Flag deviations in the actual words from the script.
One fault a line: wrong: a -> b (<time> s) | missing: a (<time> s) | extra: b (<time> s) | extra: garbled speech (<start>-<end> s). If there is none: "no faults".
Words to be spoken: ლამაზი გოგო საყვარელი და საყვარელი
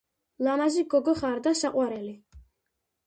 wrong: საყვარელი -> ხარ (1.2 s)